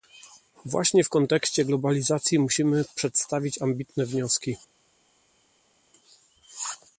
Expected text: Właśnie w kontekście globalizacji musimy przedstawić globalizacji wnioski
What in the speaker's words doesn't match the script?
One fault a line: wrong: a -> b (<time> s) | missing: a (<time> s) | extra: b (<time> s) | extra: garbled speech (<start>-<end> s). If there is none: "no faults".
wrong: globalizacji -> ambitne (3.6 s)